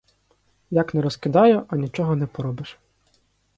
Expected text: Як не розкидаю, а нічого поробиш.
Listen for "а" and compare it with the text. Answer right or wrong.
right